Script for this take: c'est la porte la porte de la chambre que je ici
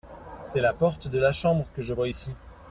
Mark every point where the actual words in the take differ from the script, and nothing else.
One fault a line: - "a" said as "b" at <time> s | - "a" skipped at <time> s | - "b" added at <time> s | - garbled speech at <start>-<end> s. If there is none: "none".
- "la porte" skipped at 1.1 s
- "vois" added at 1.9 s